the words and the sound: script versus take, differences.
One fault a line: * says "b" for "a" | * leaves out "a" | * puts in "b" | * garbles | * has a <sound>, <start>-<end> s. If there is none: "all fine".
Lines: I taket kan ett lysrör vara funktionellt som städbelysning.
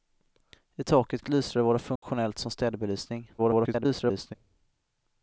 * leaves out "kan"
* has a dropout, 2.0-2.0 s
* garbles